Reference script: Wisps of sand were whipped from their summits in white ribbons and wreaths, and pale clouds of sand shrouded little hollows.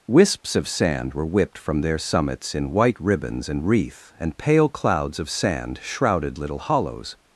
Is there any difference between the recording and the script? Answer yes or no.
yes